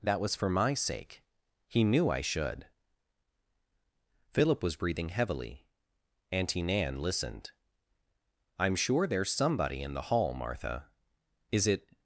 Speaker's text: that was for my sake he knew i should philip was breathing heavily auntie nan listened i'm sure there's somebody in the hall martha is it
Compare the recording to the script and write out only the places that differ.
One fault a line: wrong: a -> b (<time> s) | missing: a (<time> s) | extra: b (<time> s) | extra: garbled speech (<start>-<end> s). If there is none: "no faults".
no faults